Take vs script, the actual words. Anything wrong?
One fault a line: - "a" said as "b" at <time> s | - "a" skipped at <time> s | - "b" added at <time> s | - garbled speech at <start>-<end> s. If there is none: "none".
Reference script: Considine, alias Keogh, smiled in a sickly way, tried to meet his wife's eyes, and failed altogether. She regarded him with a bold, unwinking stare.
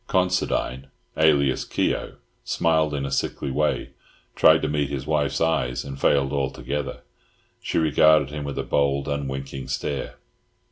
none